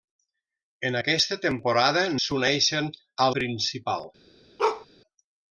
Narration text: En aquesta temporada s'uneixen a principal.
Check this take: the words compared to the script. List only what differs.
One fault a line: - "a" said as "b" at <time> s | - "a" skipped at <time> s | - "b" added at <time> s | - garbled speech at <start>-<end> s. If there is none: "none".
none